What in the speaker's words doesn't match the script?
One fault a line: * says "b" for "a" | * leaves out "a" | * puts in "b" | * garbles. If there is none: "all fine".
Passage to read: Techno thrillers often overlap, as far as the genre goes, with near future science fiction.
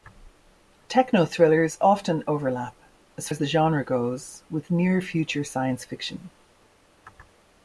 * leaves out "far"